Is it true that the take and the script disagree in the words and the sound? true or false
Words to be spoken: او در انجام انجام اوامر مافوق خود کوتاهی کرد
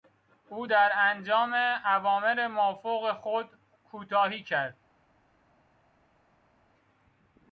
true